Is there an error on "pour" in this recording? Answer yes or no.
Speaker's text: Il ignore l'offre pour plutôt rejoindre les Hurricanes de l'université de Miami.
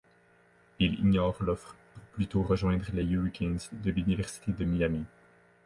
no